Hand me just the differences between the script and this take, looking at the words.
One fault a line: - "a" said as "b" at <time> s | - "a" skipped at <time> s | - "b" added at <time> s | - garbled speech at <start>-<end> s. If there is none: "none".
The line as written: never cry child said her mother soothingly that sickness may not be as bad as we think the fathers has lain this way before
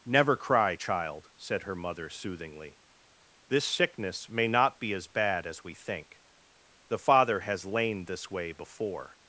- "that" said as "this" at 3.5 s
- "fathers" said as "father" at 7.0 s